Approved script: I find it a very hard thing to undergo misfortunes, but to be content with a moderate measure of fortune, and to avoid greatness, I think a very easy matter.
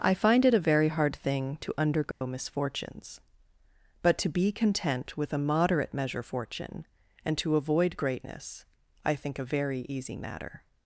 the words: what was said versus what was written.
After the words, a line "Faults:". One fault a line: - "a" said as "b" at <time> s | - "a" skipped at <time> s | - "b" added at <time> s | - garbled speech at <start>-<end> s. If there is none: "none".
I find it a very hard thing to undergo misfortunes, but to be content with a moderate measure fortune, and to avoid greatness, I think a very easy matter.
Faults:
- "of" skipped at 6.2 s